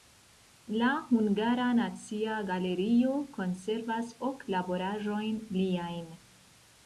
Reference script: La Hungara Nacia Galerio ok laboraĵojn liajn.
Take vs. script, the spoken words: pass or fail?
fail